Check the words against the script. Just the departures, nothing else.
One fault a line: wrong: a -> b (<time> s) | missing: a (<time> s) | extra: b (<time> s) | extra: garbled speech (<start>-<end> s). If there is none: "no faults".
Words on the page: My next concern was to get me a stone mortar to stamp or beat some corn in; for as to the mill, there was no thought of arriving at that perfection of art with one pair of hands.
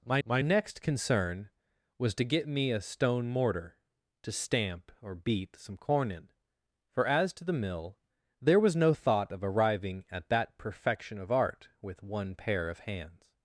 extra: my (0.2 s)